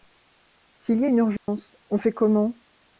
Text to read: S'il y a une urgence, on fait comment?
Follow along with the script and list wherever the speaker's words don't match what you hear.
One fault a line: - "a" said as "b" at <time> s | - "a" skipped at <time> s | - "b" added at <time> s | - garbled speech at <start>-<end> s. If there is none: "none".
none